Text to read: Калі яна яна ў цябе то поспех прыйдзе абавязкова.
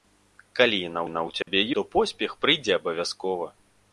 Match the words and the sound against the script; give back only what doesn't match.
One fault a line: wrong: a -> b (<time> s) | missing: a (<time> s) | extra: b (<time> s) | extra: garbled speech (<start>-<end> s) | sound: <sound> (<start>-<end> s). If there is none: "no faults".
sound: dropout (1.4-1.5 s)